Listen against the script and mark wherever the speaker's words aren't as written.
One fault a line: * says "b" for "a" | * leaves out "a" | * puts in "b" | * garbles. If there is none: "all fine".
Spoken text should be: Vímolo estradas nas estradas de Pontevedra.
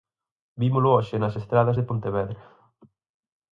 * says "hoxe" for "estradas"